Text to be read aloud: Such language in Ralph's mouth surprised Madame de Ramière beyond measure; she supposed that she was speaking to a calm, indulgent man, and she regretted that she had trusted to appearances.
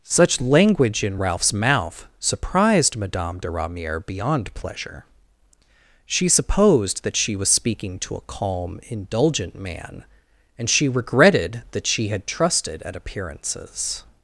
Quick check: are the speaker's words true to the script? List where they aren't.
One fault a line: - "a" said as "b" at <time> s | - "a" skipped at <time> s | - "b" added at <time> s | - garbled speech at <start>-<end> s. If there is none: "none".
- "measure" said as "pleasure" at 4.5 s
- "to" said as "at" at 12.8 s